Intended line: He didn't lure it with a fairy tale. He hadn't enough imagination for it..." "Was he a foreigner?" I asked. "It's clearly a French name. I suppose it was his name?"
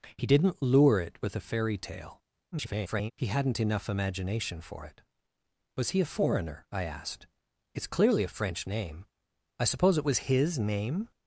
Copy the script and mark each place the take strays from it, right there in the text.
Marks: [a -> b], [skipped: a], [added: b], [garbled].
He didn't lure it with a fairy tale. [garbled] He hadn't enough imagination for it..." "Was he a foreigner?" I asked. "It's clearly a French name. I suppose it was his name?"